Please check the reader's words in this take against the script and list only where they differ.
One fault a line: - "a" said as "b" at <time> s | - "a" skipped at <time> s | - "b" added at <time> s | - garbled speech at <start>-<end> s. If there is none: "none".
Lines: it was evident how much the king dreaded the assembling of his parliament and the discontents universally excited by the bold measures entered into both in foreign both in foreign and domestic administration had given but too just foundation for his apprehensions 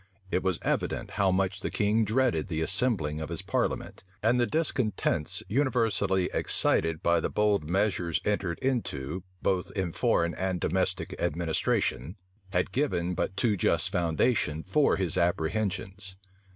- "both in foreign" skipped at 10.3 s